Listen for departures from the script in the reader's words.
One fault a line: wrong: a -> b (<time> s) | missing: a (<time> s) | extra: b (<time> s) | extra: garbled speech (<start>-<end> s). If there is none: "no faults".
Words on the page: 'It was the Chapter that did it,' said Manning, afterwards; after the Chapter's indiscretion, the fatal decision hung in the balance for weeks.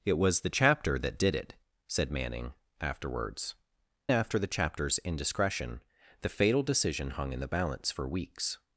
no faults